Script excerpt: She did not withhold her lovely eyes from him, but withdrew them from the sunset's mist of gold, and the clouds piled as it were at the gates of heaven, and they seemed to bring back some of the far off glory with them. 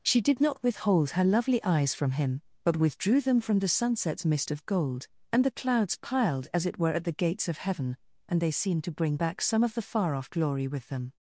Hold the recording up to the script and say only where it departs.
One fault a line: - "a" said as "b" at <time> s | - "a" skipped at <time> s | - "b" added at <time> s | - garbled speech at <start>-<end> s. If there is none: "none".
none